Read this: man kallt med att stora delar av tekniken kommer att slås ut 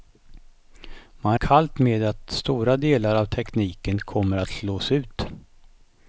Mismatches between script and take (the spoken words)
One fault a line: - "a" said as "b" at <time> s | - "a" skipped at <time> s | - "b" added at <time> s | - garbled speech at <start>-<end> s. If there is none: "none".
none